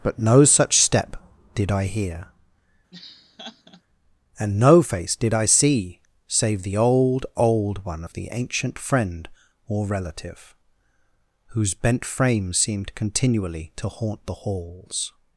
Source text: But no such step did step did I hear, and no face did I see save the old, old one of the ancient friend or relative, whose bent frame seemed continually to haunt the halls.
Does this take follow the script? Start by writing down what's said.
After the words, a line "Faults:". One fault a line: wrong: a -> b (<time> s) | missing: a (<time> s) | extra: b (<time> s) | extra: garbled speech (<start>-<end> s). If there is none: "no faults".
But no such step did I hear, and no face did I see save the old, old one of the ancient friend or relative, whose bent frame seemed continually to haunt the halls.
Faults:
missing: step did (1.7 s)